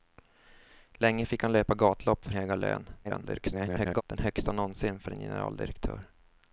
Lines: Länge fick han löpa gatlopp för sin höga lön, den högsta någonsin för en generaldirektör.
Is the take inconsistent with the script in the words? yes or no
yes